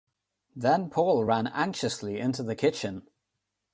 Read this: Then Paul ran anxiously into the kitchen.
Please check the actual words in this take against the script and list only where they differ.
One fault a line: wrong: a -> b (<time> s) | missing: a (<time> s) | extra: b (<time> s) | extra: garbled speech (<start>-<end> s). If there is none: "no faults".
no faults